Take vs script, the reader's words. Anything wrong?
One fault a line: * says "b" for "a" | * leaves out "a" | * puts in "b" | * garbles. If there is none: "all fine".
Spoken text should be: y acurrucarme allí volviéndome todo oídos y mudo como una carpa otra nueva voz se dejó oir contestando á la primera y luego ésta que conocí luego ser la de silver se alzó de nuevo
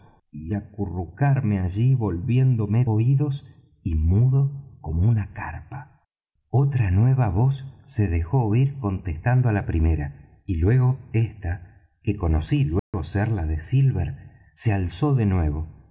* leaves out "todo"